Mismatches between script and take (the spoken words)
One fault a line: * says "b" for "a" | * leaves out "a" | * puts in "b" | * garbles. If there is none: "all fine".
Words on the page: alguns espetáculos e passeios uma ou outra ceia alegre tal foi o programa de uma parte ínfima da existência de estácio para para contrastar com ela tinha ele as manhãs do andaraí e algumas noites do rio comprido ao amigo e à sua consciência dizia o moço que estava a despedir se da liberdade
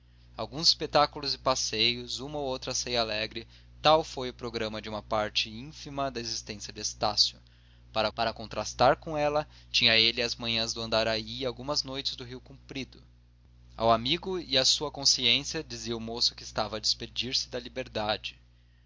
all fine